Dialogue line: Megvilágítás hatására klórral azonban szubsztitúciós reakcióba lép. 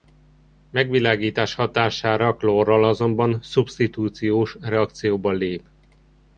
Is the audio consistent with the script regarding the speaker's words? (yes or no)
yes